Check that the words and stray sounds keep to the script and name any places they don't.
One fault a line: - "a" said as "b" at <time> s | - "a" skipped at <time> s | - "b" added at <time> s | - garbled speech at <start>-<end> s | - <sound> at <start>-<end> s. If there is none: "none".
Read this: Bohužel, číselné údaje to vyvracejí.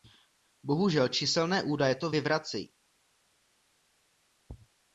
none